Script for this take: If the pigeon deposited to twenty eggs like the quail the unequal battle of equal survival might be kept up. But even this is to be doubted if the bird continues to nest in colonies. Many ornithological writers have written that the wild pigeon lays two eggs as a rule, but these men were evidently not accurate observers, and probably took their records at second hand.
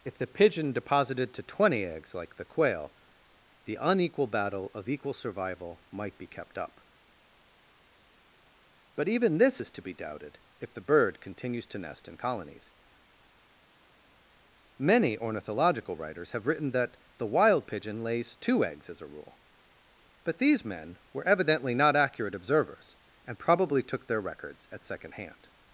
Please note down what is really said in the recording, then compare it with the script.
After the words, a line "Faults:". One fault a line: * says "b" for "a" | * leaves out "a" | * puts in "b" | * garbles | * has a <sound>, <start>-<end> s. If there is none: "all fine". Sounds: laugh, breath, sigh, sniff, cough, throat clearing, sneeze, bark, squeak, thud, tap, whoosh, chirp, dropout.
If the pigeon deposited to twenty eggs like the quail the unequal battle of equal survival might be kept up. But even this is to be doubted if the bird continues to nest in colonies. Many ornithological writers have written that the wild pigeon lays two eggs as a rule, but these men were evidently not accurate observers, and probably took their records at second hand.
Faults:
all fine